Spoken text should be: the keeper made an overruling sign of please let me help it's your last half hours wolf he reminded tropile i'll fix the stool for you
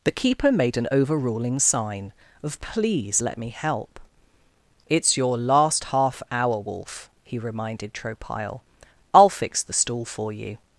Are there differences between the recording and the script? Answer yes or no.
yes